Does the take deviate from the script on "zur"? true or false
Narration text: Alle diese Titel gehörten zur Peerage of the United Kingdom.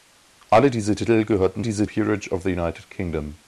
true